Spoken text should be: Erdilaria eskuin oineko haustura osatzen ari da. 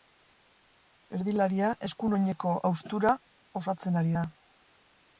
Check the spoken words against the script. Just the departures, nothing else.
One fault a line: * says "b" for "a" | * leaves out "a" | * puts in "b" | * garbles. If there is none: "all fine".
all fine